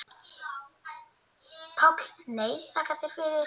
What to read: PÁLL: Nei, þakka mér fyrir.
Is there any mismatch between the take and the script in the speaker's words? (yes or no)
yes